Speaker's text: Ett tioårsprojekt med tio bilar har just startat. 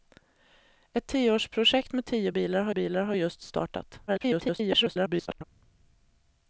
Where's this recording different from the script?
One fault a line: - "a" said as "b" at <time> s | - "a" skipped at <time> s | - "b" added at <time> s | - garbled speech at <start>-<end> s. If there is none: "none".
- "bilar har" added at 2.7 s
- garbled speech at 4.1-5.4 s